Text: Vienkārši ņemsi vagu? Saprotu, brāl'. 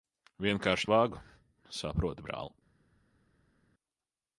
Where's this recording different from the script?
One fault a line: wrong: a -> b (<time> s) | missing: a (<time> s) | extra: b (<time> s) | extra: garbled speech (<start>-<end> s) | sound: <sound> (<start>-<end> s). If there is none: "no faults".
missing: ņemsi (0.9 s)